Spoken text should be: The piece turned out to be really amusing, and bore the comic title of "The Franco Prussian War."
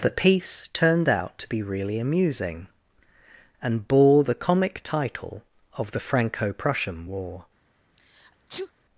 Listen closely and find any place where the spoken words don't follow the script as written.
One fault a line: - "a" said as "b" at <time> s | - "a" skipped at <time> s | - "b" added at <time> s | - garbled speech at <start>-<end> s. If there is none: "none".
none